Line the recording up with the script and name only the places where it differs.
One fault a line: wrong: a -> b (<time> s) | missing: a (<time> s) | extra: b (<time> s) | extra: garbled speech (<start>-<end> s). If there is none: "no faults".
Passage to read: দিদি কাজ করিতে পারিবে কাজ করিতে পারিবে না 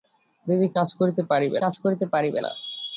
no faults